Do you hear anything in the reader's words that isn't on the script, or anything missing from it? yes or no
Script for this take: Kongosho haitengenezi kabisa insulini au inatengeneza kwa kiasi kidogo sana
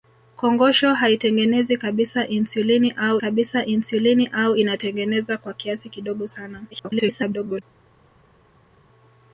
yes